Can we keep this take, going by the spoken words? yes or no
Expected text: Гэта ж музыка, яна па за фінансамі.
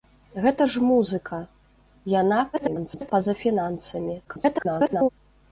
no